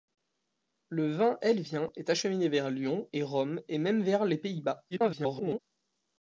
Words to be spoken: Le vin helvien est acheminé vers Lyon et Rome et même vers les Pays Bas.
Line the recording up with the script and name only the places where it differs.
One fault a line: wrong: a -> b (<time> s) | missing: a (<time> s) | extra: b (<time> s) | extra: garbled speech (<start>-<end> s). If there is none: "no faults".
extra: garbled speech (4.9-5.6 s)